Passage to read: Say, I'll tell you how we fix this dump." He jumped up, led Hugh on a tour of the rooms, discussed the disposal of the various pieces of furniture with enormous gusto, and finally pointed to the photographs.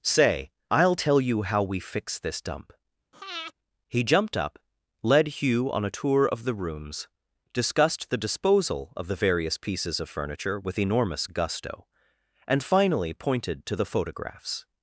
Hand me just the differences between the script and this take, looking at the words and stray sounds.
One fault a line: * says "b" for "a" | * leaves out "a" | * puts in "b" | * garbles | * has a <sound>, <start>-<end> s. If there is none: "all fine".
* has a breath, 3.1-3.5 s